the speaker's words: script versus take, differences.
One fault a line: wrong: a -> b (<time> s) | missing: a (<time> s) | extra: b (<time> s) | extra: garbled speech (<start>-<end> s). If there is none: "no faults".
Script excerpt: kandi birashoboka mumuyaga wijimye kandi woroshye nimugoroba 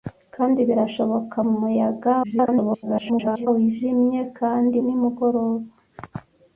extra: garbled speech (2.2-3.5 s)
missing: woroshye (4.8 s)